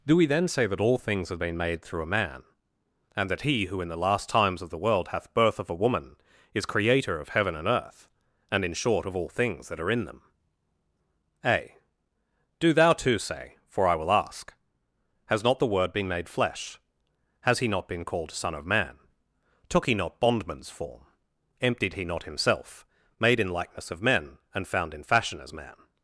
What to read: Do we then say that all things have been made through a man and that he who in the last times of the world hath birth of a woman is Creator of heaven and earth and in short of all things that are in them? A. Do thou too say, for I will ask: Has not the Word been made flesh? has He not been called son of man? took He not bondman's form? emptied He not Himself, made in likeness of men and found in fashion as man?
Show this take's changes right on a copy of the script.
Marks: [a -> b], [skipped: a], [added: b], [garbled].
Do we then say that all things have been made through a man and that he who in the last times of the world hath birth of a woman is Creator of heaven and earth and in short of all things that are in them? A. Do thou too say, for I will ask: Has not the Word been made flesh? has He not been called son of man? took He not bondman's form? emptied He not Himself, made in likeness of men and found in fashion as man?